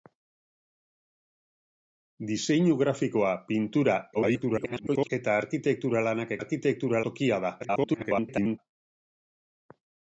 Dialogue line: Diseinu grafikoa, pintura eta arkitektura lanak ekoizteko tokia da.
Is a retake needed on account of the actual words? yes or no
yes